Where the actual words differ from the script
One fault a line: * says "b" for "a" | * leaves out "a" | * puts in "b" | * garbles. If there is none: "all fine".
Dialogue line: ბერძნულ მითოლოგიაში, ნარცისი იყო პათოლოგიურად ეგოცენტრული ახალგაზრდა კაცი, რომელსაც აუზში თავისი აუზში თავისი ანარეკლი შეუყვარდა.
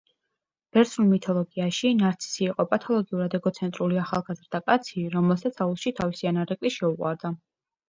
* leaves out "აუზში თავისი"